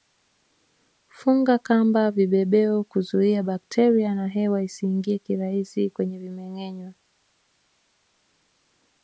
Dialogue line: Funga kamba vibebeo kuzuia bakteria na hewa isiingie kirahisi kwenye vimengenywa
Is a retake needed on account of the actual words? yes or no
no